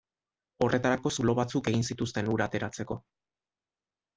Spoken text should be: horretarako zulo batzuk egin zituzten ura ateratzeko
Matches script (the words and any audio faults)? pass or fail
pass